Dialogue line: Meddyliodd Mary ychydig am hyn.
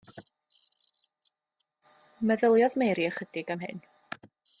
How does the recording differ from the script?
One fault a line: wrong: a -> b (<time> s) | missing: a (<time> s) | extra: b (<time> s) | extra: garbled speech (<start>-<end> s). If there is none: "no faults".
no faults